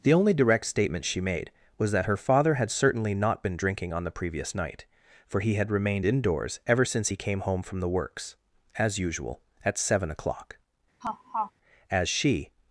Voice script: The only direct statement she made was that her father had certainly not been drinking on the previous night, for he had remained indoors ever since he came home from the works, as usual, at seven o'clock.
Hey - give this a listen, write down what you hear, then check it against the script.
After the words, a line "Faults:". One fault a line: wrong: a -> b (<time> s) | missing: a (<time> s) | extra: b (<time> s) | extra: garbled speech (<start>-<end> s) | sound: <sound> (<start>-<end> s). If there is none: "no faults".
The only direct statement she made was that her father had certainly not been drinking on the previous night, for he had remained indoors ever since he came home from the works, as usual, at seven o'clock. As she
Faults:
sound: laugh (11.0-11.5 s)
extra: As she (11.9 s)